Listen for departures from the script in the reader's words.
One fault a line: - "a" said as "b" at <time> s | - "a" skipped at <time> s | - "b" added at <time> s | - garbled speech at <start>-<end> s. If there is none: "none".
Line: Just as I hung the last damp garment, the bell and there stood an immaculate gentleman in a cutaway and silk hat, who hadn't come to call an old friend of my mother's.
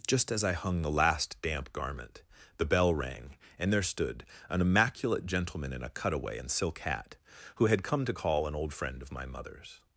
- "rang" added at 2.9 s
- "hadn't" said as "had" at 7.7 s